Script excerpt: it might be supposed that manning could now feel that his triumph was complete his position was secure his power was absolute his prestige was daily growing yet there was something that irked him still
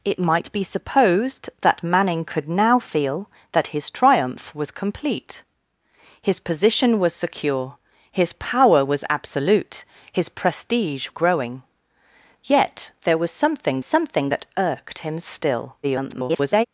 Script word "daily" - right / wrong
wrong